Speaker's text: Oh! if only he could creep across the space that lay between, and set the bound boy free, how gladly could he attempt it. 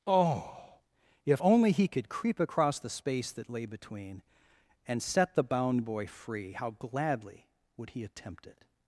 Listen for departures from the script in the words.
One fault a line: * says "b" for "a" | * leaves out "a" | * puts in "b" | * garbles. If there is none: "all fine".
* says "would" for "could"